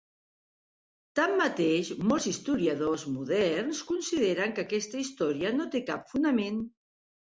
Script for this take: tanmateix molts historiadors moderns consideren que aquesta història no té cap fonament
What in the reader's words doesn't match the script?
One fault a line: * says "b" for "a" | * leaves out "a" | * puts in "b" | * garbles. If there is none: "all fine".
all fine